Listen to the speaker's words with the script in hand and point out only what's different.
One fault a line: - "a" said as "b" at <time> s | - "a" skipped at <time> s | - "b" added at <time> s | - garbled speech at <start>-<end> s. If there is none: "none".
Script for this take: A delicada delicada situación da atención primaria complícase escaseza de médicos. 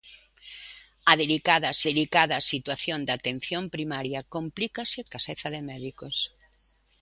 none